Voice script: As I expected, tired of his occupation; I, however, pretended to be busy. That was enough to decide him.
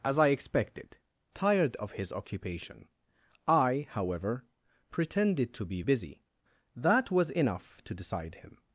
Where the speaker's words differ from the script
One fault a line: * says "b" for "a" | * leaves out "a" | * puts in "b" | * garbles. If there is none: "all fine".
all fine